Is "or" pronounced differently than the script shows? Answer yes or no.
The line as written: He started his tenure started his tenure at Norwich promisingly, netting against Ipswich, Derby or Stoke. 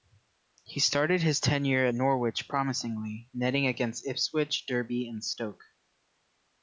yes